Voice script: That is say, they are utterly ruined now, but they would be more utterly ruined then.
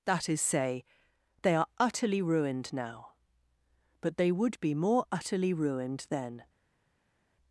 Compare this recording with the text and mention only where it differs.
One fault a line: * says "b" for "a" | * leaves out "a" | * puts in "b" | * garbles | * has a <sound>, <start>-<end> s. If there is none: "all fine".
all fine